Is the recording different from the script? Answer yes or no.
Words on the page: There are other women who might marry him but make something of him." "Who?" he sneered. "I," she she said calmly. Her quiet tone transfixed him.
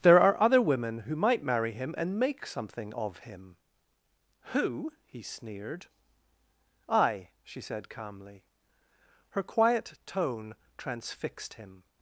yes